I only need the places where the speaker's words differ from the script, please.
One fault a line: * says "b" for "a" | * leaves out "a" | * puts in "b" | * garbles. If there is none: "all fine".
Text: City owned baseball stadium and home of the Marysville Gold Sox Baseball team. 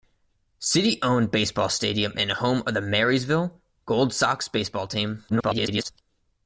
* garbles